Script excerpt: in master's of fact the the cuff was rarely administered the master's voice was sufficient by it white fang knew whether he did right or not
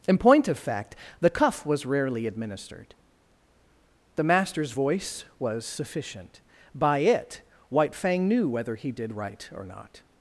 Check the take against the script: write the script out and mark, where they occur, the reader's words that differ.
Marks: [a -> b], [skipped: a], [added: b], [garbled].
in [master's -> point] of fact the [skipped: the] cuff was rarely administered the master's voice was sufficient by it white fang knew whether he did right or not